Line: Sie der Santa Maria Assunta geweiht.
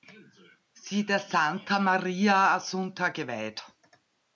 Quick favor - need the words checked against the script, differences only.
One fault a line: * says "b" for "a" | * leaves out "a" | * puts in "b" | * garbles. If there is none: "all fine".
all fine